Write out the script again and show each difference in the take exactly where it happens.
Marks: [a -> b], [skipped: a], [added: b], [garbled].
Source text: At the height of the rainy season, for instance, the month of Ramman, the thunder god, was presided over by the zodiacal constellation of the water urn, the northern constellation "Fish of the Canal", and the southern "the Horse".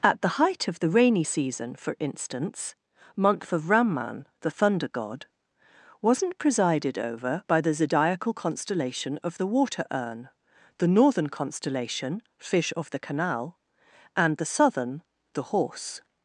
At the height of the rainy season, for instance, [skipped: the] month of Ramman, the thunder god, [was -> wasn't] presided over by the zodiacal constellation of the water urn, the northern constellation "Fish of the Canal", and the southern "the Horse".